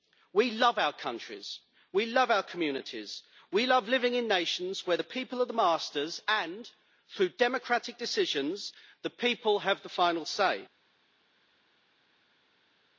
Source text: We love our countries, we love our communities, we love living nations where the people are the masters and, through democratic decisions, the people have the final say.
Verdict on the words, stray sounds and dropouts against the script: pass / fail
fail